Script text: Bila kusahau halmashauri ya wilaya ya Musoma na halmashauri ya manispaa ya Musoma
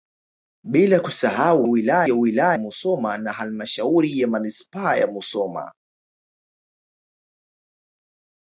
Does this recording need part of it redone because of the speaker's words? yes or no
yes